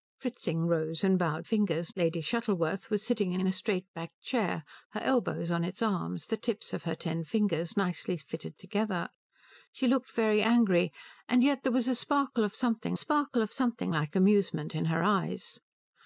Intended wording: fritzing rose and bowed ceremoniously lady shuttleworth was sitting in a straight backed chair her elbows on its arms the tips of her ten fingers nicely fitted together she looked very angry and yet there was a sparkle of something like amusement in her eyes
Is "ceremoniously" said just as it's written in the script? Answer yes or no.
no